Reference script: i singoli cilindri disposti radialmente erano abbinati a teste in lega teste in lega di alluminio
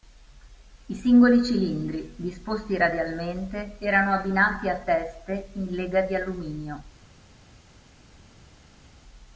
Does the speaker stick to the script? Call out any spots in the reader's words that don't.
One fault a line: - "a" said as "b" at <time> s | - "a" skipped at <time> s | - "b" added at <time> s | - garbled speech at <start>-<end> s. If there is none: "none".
- "teste in lega" skipped at 6.0 s